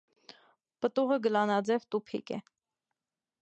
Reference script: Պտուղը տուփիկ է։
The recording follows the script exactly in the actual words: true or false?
false